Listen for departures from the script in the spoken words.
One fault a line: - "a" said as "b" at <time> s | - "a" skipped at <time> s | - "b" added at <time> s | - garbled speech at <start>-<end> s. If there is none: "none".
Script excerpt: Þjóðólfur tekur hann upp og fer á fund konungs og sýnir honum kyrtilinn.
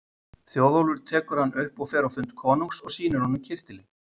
none